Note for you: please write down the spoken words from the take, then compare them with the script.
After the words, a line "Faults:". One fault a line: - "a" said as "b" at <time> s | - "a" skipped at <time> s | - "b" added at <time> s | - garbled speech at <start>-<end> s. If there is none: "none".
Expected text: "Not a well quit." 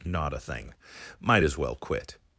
"Not a thing. Might as well quit."
Faults:
- "thing Might as" added at 0.4 s